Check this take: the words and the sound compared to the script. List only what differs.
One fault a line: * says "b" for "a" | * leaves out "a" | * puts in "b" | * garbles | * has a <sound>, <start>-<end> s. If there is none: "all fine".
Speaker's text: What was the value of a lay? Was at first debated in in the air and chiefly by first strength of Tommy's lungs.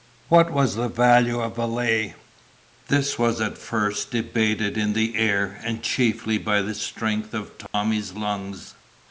* puts in "This"
* leaves out "in"
* says "the" for "first"
* has a dropout, 7.7-7.7 s